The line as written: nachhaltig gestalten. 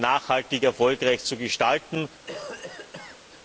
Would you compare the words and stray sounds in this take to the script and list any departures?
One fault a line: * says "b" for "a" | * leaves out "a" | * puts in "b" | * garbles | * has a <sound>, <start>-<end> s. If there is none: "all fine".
* puts in "erfolgreich zu"
* has a cough, 2.3-3.2 s